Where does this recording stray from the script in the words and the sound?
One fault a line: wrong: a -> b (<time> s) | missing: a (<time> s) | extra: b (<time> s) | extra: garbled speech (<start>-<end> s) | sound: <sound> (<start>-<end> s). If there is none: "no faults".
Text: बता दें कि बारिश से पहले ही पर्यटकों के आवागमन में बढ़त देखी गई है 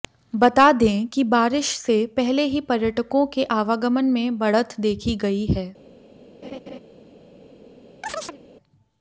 sound: laugh (6.4-6.8 s)
sound: chirp (8.0-8.4 s)